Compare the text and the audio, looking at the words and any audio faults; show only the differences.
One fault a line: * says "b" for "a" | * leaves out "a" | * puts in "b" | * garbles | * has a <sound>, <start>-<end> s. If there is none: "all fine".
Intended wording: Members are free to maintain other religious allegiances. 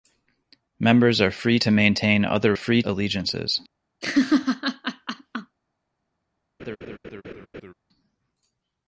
* says "free" for "religious"
* has a laugh, 4.0-5.6 s
* has a laugh, 6.6-7.7 s